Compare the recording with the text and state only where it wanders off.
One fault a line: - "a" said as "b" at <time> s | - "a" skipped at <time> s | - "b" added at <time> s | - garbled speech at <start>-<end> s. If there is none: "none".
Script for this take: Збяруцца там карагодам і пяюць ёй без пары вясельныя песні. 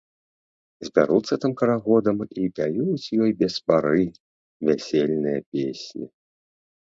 none